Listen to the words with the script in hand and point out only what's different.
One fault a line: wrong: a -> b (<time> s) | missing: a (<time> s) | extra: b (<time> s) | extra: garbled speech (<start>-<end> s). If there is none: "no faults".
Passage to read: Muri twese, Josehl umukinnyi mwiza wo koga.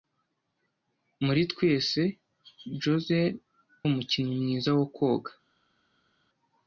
no faults